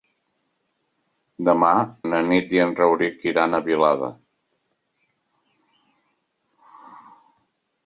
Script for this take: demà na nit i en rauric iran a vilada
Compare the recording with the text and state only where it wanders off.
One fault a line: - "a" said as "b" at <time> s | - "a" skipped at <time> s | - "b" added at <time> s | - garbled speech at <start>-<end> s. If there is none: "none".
none